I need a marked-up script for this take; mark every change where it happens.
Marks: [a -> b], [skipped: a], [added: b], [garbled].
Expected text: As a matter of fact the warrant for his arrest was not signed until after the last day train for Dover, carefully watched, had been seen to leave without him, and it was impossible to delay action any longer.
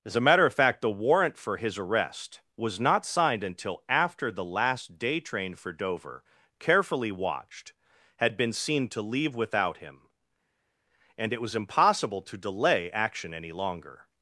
As a matter of fact the warrant for his arrest was not signed until after the last day train for Dover, carefully watched, had been seen to leave without him, and it was impossible to delay action any longer.